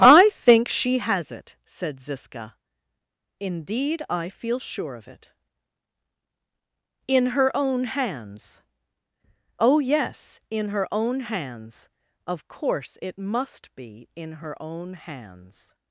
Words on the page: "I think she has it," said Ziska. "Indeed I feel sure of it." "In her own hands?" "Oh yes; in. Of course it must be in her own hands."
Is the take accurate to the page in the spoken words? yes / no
no